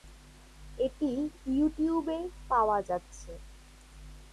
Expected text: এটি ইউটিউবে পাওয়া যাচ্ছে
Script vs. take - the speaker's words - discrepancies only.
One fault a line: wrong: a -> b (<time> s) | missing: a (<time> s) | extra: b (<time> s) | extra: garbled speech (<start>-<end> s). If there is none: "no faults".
no faults